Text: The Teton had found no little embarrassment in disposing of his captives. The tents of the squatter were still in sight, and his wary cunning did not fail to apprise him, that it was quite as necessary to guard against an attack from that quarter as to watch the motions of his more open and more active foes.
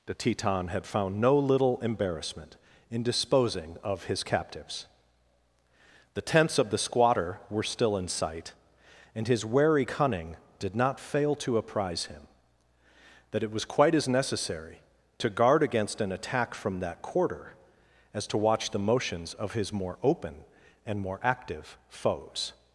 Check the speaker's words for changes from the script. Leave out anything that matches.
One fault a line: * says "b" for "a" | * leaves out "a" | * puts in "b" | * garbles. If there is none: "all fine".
all fine